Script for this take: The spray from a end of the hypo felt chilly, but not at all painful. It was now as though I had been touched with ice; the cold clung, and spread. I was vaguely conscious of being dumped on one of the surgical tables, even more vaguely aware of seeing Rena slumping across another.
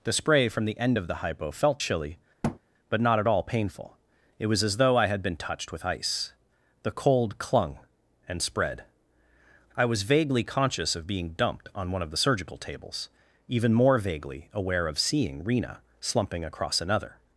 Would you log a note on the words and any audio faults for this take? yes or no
yes